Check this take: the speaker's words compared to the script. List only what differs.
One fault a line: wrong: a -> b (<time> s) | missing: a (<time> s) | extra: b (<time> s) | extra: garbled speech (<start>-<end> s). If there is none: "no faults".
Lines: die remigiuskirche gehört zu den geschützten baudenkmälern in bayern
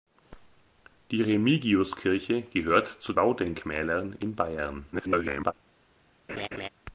missing: den geschützten (3.1 s)
extra: garbled speech (4.9-5.5 s)